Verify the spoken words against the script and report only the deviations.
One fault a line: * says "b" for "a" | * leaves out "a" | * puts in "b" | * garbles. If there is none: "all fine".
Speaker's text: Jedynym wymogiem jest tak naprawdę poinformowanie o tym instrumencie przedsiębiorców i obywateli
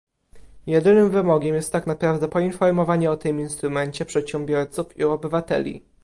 all fine